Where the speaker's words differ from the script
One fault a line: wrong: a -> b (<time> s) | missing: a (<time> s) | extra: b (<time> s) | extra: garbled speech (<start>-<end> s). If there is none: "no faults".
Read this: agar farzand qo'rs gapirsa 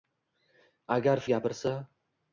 missing: farzand qo'rs (1.2 s)